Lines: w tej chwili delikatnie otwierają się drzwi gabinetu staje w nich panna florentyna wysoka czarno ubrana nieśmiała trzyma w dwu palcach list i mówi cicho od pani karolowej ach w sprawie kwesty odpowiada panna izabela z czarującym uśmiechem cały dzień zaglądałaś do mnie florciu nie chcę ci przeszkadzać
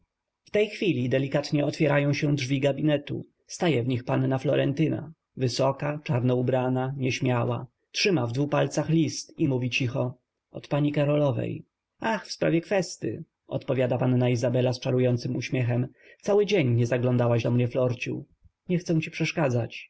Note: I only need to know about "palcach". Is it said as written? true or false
true